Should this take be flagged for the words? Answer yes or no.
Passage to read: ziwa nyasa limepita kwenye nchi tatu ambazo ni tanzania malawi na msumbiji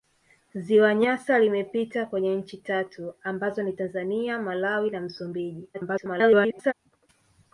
yes